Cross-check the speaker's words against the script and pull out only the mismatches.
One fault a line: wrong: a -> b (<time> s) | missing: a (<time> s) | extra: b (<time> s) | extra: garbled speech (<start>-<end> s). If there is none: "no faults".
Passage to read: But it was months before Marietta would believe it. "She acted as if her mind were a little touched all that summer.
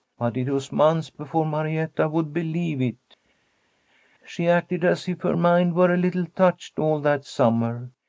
no faults